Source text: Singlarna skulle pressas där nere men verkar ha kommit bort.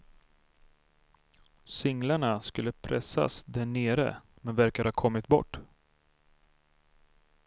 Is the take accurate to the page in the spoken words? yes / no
yes